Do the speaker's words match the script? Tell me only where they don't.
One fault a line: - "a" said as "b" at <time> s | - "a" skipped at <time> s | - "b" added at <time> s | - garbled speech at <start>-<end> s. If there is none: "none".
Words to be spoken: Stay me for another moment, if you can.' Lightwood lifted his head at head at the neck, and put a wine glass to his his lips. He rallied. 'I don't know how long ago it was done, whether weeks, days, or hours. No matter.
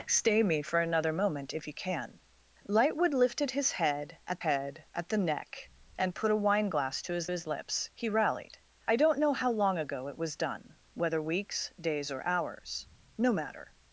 none